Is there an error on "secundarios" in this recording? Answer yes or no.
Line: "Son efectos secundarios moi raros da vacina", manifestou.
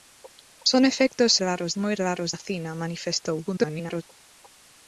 yes